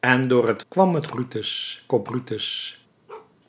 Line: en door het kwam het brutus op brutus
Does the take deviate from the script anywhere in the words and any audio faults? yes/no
yes